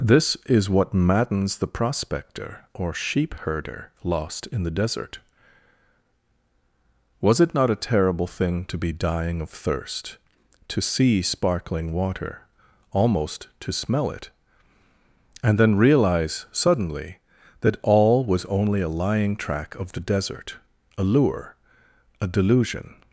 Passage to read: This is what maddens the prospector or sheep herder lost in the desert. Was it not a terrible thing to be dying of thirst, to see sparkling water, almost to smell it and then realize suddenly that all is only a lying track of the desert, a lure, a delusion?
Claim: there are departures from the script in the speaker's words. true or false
true